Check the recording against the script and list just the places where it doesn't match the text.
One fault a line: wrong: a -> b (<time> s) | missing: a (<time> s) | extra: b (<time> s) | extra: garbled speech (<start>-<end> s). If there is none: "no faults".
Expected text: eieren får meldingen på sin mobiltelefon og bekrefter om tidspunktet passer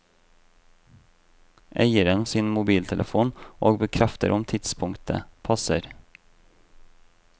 missing: får meldingen på (2.2 s)